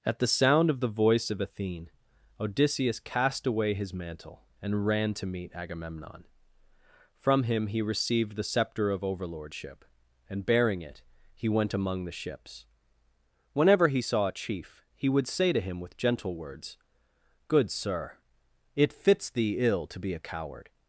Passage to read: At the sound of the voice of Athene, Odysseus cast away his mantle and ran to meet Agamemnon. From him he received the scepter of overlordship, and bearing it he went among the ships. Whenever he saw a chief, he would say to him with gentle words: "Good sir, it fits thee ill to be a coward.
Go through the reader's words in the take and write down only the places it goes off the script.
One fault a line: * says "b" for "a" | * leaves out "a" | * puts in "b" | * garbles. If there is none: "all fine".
all fine